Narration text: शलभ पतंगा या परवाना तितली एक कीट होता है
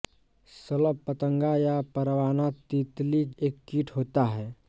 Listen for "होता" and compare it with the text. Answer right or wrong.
right